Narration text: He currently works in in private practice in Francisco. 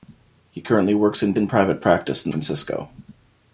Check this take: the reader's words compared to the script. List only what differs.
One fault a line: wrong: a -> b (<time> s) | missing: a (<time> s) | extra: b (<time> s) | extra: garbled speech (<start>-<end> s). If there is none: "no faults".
no faults